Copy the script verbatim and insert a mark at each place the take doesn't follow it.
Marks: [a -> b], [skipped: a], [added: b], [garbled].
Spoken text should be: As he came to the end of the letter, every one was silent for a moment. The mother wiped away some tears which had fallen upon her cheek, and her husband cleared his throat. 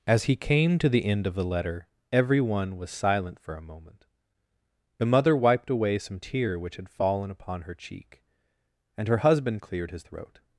As he came to the end of the letter, every one was silent for a moment. The mother wiped away some [tears -> tear] which had fallen upon her cheek, and her husband cleared his throat.